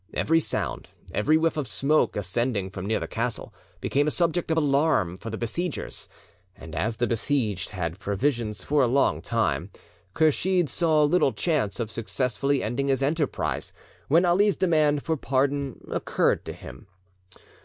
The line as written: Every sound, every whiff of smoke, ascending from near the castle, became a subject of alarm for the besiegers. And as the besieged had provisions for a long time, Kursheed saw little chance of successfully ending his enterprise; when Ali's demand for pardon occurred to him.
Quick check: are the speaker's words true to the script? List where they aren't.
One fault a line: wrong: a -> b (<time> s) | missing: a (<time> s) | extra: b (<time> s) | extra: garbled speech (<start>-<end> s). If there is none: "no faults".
no faults